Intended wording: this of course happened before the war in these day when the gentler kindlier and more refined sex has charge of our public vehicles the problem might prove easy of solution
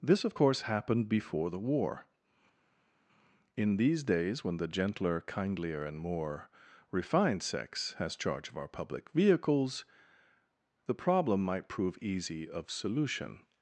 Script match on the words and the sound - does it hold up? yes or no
no